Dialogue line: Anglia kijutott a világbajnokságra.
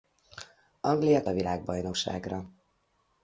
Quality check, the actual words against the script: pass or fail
fail